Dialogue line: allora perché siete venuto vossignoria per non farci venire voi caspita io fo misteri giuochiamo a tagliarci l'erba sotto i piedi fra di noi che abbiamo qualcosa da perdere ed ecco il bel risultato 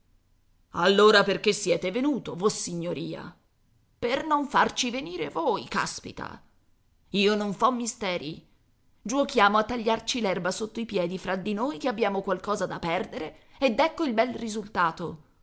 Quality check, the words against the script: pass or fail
fail